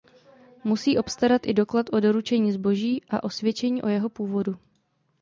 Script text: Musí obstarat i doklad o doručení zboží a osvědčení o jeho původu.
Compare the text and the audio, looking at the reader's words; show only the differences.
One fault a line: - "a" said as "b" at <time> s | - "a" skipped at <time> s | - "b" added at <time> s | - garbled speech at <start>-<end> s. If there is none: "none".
none